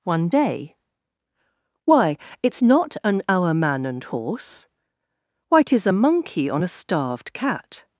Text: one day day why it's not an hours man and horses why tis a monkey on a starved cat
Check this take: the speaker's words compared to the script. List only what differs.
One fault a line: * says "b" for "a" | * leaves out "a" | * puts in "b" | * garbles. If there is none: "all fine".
* leaves out "day"
* says "hour" for "hours"
* says "horse" for "horses"